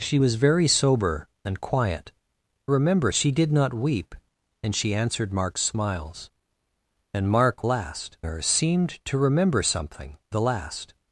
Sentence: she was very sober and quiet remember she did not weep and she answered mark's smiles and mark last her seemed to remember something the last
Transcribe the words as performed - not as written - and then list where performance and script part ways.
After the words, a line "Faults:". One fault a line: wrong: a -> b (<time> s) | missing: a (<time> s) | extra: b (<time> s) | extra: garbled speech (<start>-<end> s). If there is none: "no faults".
she was very sober and quiet remember she did not weep and she answered mark's smiles and mark last her seemed to remember something the last
Faults:
no faults